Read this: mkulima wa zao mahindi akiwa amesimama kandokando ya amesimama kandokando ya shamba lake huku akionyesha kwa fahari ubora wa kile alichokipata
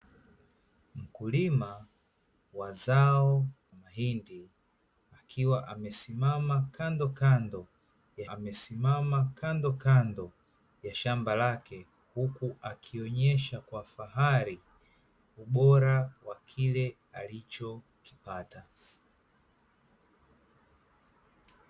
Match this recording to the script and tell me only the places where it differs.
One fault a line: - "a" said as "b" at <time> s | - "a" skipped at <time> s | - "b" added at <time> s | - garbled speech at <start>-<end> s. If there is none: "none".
none